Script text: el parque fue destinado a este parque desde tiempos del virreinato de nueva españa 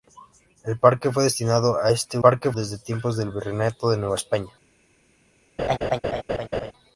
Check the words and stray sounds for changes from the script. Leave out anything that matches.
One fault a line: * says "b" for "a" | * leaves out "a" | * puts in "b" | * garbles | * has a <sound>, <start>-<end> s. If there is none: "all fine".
* has a laugh, 5.6-6.7 s